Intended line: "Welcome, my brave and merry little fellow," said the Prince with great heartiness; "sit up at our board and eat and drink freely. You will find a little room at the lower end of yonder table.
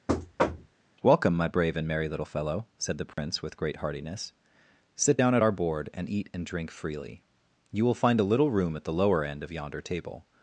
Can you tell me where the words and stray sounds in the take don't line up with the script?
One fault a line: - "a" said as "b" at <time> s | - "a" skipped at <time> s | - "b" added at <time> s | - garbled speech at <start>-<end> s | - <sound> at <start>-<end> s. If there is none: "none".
- thud at 0.1-0.8 s
- dropout at 3.1-3.2 s
- "up" said as "down" at 5.1 s